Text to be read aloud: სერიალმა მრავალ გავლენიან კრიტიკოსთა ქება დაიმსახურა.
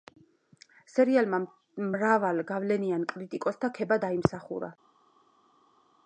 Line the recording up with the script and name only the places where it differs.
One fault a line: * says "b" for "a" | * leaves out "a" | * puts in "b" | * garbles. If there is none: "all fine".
all fine